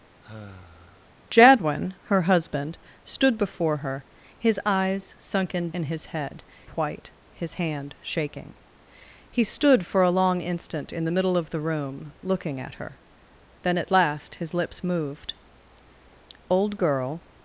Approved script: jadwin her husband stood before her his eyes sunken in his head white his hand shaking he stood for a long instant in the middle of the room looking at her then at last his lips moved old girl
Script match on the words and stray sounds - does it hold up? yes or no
no